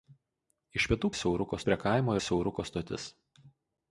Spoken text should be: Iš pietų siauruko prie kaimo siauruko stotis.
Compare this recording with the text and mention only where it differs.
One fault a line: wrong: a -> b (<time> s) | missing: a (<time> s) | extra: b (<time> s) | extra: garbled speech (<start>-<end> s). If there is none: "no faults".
no faults